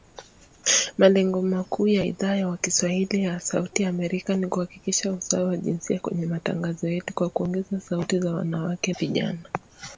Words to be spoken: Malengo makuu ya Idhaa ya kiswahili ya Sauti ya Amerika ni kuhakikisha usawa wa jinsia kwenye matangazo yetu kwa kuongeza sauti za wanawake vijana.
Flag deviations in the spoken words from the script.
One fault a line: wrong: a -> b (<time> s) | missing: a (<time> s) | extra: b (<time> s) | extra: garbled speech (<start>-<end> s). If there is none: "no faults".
no faults